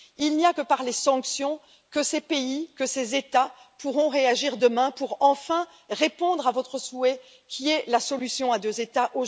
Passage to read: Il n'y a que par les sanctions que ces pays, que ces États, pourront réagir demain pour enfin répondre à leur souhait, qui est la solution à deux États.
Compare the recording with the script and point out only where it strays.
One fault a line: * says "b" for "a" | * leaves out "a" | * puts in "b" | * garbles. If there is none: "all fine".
* says "votre" for "leur"